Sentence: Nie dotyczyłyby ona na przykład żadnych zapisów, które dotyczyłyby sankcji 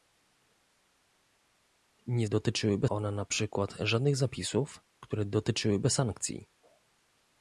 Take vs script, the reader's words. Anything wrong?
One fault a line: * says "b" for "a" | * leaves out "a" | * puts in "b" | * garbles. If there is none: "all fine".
all fine